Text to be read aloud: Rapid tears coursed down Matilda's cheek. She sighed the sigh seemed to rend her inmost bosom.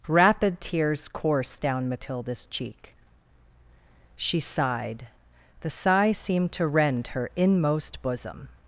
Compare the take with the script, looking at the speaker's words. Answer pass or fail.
pass